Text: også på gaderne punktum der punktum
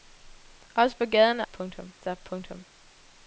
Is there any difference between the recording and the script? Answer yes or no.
no